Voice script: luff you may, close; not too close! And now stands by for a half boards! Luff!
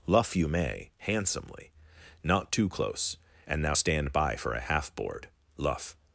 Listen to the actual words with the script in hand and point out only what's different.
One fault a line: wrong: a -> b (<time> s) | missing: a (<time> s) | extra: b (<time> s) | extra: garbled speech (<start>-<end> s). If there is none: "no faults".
wrong: close -> handsomely (1.0 s)
wrong: stands -> stand (3.7 s)
wrong: boards -> board (4.9 s)